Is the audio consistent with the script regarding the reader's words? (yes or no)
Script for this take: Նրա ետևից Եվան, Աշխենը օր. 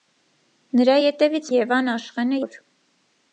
yes